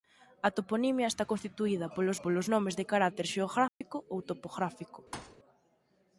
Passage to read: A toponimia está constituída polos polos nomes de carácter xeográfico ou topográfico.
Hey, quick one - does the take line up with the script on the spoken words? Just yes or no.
yes